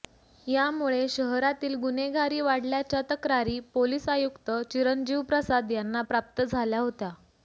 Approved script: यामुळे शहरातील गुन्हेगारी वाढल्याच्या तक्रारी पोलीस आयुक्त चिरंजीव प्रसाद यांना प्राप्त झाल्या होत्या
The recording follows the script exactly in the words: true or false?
true